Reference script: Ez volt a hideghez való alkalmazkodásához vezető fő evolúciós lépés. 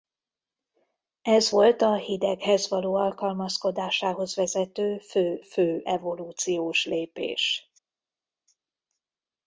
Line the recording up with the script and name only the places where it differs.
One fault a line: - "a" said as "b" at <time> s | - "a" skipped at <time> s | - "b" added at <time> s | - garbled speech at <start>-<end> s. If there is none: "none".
- "fő" added at 5.4 s